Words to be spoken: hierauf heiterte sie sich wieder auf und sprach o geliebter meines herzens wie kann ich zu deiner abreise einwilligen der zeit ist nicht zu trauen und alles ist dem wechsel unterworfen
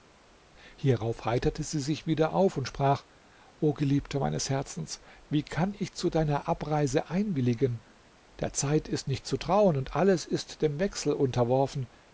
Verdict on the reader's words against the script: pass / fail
pass